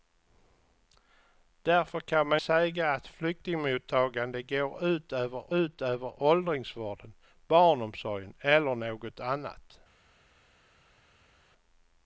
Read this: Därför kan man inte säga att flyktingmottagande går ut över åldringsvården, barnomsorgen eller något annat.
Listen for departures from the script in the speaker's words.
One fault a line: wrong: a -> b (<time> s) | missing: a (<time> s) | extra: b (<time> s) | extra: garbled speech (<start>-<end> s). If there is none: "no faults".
missing: inte (2.4 s)
extra: ut över (5.5 s)